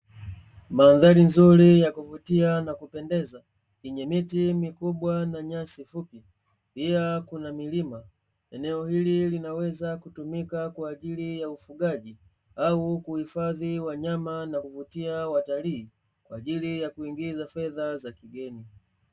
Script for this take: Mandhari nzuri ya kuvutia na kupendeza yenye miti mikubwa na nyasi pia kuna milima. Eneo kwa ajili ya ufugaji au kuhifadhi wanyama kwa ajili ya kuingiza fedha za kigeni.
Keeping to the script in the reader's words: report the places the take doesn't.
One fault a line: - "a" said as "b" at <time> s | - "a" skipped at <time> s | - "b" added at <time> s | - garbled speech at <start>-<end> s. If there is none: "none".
- "fupi" added at 5.8 s
- "hili linaweza kutumika" added at 8.9 s
- "na kuvutia watalii" added at 14.4 s